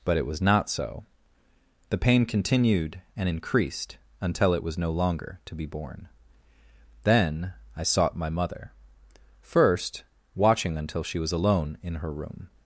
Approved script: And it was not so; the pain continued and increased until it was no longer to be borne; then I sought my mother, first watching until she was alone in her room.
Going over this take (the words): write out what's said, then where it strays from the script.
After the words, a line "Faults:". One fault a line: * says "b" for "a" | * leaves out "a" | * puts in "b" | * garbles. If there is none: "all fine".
But it was not so; the pain continued and increased until it was no longer to be borne; then I sought my mother, first watching until she was alone in her room.
Faults:
* says "But" for "And"